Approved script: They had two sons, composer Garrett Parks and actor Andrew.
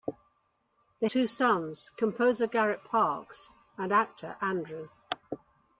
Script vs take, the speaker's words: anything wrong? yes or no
yes